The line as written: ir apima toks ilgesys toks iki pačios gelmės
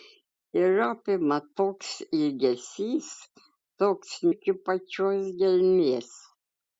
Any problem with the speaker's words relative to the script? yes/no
no